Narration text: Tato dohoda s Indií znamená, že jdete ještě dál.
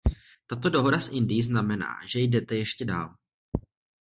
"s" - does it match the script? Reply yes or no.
yes